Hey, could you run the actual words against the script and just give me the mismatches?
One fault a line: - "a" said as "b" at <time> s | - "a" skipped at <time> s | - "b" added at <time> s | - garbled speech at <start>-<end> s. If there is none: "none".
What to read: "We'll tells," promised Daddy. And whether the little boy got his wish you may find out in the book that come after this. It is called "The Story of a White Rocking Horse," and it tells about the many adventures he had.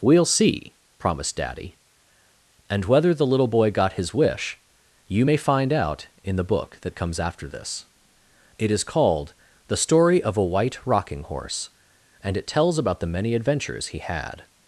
- "tells" said as "see" at 0.2 s
- "come" said as "comes" at 6.9 s